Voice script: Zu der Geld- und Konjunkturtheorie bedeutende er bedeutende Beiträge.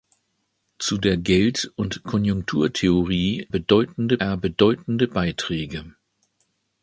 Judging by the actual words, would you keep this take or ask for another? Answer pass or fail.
pass